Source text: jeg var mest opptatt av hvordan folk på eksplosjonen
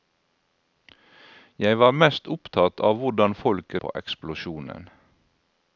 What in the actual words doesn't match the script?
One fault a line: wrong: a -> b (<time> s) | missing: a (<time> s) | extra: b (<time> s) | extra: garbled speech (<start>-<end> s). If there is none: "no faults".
no faults